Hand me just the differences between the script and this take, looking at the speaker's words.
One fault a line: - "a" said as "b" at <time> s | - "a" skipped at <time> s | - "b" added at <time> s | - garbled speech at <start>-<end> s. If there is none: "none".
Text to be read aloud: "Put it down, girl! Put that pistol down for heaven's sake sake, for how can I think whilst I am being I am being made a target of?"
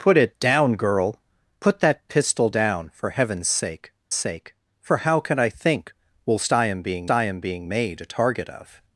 none